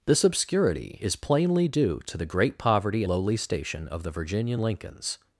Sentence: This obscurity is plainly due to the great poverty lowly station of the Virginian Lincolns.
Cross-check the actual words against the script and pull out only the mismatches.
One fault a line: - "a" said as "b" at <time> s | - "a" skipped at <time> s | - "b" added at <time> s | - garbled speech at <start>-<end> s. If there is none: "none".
none